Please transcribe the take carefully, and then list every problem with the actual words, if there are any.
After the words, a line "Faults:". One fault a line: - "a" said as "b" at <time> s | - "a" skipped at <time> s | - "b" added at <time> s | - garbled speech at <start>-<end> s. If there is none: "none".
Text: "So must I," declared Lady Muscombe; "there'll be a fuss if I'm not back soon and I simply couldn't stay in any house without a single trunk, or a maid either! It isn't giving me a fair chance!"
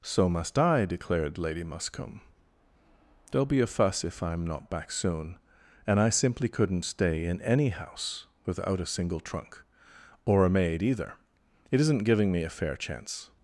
"So must I," declared Lady Muscombe; "there'll be a fuss if I'm not back soon and I simply couldn't stay in any house without a single trunk, or a maid either! It isn't giving me a fair chance!"
Faults:
none